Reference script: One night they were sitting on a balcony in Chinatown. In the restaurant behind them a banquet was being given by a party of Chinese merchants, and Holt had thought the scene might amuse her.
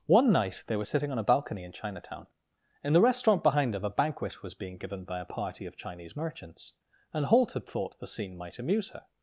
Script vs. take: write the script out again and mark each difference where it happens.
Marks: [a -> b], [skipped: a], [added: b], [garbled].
One night they were sitting on a balcony in Chinatown. In the restaurant behind them a banquet was being given by a party of Chinese merchants, and Holt had thought the scene might amuse her.